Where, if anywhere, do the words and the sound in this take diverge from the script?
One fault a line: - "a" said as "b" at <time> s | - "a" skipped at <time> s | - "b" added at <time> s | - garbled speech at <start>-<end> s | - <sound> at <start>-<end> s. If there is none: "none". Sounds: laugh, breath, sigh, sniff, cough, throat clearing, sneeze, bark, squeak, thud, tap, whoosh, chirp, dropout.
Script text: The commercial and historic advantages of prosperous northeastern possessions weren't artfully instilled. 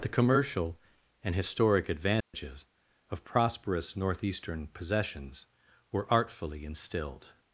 - dropout at 2.2-2.3 s
- "weren't" said as "were" at 5.9 s